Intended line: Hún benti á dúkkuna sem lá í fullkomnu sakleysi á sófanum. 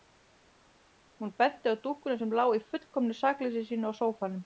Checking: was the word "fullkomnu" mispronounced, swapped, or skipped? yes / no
no